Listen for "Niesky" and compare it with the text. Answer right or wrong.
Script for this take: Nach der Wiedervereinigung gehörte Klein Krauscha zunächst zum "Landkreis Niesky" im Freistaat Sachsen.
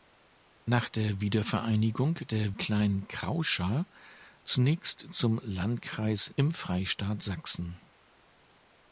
wrong